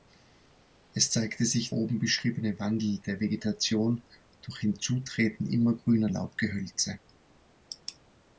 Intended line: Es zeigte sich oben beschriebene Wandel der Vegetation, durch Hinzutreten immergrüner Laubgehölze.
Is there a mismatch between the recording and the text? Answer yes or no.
no